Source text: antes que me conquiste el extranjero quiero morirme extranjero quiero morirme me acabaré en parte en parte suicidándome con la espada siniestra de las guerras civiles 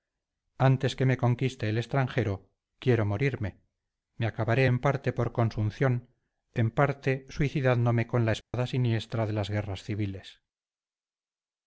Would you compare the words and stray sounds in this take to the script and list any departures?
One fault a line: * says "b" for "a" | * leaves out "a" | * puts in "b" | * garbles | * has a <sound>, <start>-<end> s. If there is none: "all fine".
* leaves out "extranjero quiero morirme"
* puts in "por consunción"
* has a dropout, 8.4-8.5 s